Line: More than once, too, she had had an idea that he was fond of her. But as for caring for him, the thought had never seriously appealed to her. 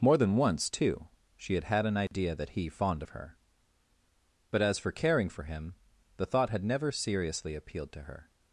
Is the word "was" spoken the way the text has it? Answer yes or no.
no